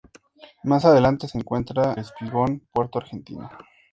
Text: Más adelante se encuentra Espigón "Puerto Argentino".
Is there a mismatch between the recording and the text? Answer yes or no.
no